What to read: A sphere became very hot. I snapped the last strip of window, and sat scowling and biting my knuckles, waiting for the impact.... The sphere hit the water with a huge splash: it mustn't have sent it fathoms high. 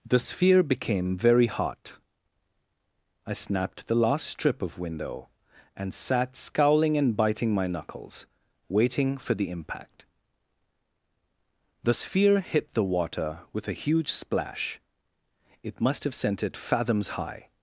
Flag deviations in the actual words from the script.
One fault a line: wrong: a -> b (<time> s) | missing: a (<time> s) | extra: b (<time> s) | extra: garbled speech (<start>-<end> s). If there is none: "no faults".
wrong: A -> The (0.1 s)
wrong: mustn't -> must (15.8 s)